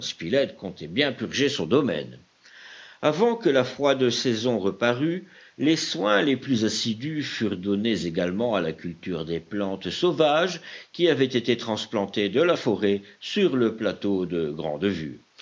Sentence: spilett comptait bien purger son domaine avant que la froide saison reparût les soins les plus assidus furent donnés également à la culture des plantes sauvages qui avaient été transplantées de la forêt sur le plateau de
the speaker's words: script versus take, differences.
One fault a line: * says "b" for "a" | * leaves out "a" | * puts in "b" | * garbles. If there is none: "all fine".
all fine